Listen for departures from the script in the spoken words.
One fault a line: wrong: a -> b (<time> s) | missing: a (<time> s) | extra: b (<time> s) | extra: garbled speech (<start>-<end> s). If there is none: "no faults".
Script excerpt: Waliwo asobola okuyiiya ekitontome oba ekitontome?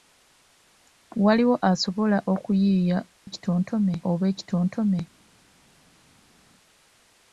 no faults